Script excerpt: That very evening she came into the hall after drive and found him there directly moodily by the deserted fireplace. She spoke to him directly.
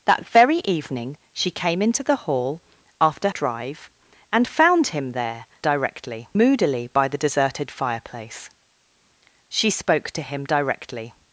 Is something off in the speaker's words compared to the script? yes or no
no